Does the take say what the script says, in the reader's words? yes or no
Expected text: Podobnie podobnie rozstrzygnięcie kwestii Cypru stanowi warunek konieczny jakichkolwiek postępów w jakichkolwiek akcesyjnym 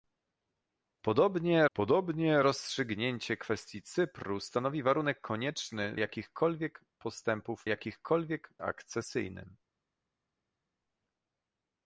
yes